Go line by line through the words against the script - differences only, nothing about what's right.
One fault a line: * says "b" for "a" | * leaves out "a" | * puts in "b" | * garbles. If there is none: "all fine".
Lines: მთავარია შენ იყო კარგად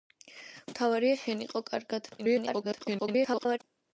* garbles